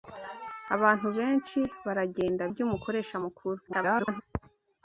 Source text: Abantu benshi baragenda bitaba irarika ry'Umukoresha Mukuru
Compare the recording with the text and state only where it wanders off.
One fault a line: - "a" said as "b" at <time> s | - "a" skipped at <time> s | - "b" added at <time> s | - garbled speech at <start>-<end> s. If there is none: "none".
- "bitaba irarika" skipped at 2.4 s
- garbled speech at 3.7-4.2 s